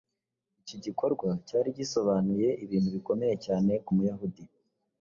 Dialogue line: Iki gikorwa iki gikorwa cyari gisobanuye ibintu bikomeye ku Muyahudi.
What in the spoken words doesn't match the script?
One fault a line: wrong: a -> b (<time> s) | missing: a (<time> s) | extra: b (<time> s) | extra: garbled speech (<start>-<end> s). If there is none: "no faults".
missing: iki gikorwa (1.3 s)
extra: cyane (3.5 s)